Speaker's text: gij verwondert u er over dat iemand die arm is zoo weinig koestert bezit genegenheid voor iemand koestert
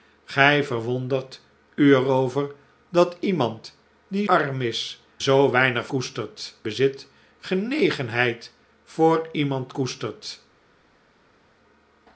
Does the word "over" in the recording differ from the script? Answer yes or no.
no